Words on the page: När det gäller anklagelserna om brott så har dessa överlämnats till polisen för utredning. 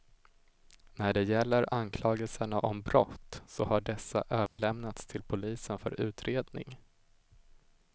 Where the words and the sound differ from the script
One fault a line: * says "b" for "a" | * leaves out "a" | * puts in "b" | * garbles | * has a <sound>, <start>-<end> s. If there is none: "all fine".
* has a dropout, 4.5-4.6 s